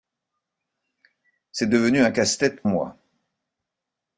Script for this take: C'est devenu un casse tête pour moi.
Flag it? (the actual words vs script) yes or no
yes